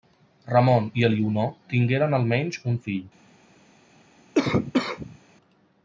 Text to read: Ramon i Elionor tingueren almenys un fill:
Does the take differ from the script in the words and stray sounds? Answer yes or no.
yes